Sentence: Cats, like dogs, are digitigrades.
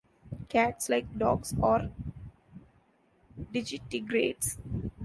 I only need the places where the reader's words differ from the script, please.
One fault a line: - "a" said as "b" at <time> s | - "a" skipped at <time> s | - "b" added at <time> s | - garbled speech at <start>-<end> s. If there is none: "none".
none